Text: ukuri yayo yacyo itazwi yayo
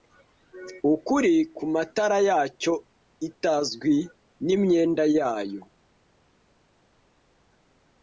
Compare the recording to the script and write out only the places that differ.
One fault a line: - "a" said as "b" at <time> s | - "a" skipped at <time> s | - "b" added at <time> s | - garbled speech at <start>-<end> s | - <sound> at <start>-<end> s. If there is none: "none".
- "yayo" said as "kumatara" at 1.6 s
- "nimyenda" added at 4.5 s